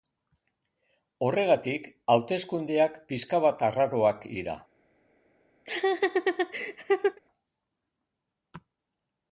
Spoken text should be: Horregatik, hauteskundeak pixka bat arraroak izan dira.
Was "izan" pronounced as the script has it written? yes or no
no